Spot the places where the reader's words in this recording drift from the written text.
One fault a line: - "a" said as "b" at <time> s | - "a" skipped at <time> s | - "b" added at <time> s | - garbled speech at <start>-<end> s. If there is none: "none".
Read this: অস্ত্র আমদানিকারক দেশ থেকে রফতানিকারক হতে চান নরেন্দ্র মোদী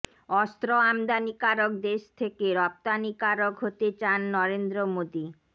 none